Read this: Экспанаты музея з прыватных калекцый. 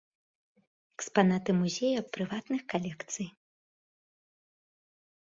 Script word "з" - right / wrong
right